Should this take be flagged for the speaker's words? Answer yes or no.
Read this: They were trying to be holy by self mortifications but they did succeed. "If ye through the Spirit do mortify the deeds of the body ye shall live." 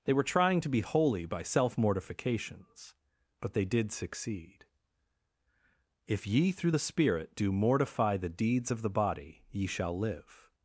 no